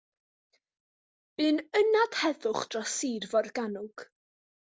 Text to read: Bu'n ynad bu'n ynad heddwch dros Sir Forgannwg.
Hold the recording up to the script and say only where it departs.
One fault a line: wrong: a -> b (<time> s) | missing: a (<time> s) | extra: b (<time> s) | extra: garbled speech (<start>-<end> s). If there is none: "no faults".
missing: bu'n ynad (2.2 s)